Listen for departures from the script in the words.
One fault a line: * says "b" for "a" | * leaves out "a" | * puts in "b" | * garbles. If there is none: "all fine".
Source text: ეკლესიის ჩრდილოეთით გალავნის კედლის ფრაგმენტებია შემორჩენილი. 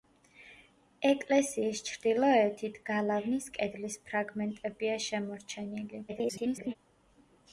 * garbles